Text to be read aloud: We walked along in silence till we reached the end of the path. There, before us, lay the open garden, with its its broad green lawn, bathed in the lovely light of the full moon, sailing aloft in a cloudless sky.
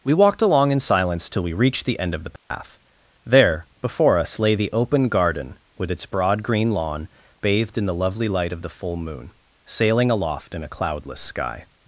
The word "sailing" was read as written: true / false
true